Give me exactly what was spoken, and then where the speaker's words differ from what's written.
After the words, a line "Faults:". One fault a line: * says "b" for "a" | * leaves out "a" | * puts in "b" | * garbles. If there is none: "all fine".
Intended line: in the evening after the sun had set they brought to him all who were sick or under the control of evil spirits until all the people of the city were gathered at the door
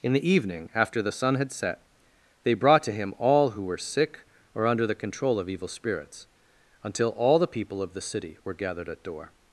in the evening after the sun had set they brought to him all who were sick or under the control of evil spirits until all the people of the city were gathered at door
Faults:
* leaves out "the"